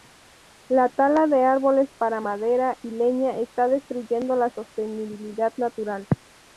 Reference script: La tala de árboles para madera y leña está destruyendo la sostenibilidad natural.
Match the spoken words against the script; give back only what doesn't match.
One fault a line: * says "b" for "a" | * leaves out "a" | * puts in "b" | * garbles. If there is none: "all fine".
all fine